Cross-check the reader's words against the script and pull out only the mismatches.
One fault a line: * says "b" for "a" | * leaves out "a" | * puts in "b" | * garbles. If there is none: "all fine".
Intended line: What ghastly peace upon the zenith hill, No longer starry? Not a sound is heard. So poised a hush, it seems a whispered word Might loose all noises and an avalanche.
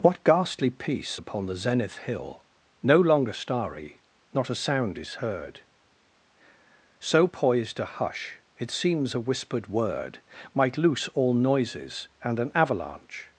all fine